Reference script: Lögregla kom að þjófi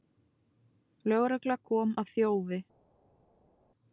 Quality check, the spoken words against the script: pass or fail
pass